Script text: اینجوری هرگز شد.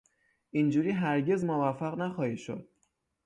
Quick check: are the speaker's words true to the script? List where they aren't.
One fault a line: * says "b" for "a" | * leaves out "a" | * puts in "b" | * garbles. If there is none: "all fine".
* puts in "موفق نخواهی"